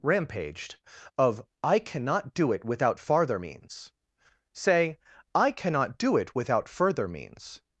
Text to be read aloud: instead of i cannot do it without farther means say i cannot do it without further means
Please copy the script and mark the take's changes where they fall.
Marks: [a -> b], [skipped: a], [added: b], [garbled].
[instead -> rampaged] of i cannot do it without farther means say i cannot do it without further means